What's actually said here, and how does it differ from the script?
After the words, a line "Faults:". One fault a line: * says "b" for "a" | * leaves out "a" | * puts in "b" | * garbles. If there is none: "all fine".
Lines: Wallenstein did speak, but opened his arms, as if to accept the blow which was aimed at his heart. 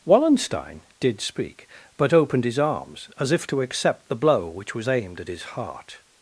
Wallenstein did speak, but opened his arms, as if to accept the blow which was aimed at his heart.
Faults:
all fine